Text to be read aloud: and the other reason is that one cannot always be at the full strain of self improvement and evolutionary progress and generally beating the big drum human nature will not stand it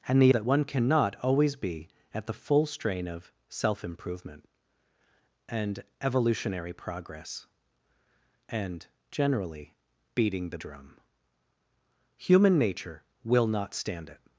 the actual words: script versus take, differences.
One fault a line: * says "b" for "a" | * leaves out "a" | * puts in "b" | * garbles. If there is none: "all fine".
* leaves out "other reason is"
* leaves out "big"